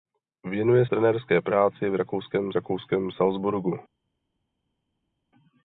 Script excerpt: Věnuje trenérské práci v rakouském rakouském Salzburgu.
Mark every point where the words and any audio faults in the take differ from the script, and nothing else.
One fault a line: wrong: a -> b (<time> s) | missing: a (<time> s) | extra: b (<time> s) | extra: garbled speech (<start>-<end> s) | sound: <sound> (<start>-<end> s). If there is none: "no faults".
no faults